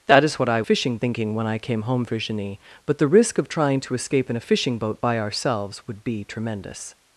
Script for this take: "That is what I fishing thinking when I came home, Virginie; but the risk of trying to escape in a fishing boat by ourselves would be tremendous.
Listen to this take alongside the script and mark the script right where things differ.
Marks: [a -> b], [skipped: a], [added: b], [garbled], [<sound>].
"That is what I fishing thinking when I came home, Virginie; but the risk of trying to escape in a fishing boat by ourselves would be tremendous.